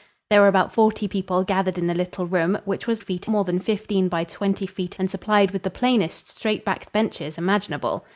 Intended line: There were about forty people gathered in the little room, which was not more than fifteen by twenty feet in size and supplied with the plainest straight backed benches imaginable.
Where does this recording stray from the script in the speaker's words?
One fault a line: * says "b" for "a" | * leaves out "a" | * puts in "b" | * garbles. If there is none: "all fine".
* says "feet" for "not"
* leaves out "in size"